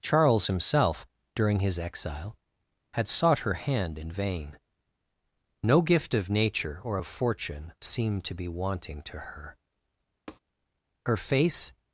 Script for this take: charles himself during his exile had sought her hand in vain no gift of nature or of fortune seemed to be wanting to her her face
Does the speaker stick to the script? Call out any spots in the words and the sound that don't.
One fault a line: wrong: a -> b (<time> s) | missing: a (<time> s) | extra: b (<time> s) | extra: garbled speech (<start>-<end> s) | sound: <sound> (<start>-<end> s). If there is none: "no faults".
sound: tap (10.3-10.4 s)